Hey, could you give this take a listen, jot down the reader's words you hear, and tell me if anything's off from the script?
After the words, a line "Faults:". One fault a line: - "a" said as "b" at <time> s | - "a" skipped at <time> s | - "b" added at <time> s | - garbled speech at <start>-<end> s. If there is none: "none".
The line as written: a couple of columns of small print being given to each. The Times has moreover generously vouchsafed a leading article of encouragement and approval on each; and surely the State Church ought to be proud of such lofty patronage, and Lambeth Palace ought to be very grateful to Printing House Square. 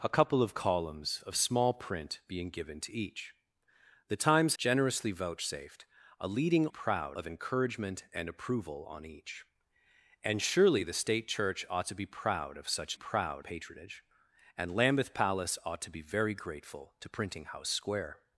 a couple of columns of small print being given to each. The Times generously vouchsafed a leading proud of encouragement and approval on each; and surely the State Church ought to be proud of such proud patronage, and Lambeth Palace ought to be very grateful to Printing House Square.
Faults:
- "has moreover" skipped at 4.5 s
- "article" said as "proud" at 6.7 s
- "lofty" said as "proud" at 12.9 s